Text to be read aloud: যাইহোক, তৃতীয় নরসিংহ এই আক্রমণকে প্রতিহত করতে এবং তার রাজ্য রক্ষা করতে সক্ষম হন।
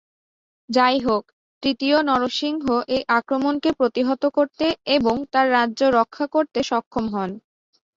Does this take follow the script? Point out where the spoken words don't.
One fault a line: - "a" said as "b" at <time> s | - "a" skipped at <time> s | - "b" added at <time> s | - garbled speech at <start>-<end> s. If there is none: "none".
none